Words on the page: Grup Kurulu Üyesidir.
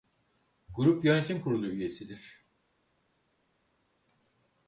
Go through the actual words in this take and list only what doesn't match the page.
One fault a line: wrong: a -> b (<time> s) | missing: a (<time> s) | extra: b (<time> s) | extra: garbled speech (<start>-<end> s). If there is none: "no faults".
extra: Yönetim (1.1 s)